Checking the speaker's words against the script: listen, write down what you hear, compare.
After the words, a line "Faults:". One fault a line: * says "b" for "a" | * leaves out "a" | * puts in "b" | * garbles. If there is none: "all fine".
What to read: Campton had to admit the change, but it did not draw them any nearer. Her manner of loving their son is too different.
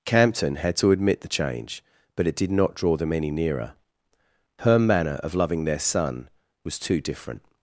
Campton had to admit the change, but it did not draw them any nearer. Her manner of loving their son was too different.
Faults:
* says "was" for "is"